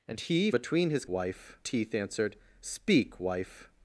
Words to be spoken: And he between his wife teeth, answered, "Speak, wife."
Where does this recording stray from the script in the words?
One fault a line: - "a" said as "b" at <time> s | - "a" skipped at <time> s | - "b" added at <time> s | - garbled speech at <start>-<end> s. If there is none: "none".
none